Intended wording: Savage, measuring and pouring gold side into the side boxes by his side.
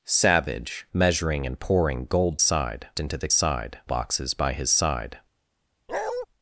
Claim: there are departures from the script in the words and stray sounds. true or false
true